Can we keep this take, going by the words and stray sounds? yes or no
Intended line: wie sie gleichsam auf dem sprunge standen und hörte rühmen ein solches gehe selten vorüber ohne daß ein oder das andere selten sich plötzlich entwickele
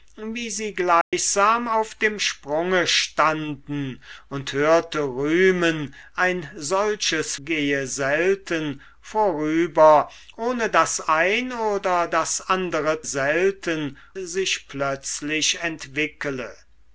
no